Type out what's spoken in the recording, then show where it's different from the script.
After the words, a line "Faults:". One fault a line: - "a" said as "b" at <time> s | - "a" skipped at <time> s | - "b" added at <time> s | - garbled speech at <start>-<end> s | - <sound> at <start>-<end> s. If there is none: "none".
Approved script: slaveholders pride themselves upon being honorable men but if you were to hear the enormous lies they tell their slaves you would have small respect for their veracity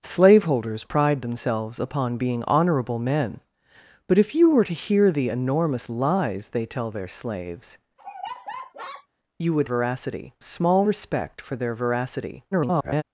slaveholders pride themselves upon being honorable men but if you were to hear the enormous lies they tell their slaves you would veracity small respect for their veracity [garbled]
Faults:
- laugh at 8.0-9.1 s
- "have" said as "veracity" at 9.7 s
- garbled speech at 12.5-13.0 s